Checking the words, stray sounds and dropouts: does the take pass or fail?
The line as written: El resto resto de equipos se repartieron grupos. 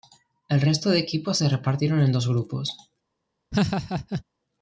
fail